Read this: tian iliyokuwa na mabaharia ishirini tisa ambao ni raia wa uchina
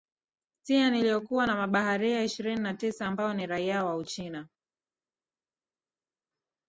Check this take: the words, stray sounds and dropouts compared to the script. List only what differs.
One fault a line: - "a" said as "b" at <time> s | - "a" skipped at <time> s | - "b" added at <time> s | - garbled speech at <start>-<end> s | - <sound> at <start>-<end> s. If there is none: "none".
- "na" added at 2.6 s